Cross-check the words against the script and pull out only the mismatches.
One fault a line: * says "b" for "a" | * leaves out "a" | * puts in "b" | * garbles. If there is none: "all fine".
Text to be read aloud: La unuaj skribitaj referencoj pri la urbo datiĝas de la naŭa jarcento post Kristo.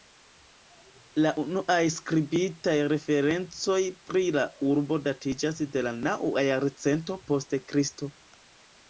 all fine